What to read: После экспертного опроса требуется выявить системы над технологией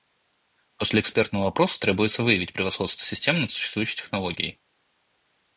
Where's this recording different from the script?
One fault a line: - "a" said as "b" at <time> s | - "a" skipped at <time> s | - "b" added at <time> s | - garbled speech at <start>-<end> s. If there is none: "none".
- "превосходство" added at 2.5 s
- "существующей" added at 3.5 s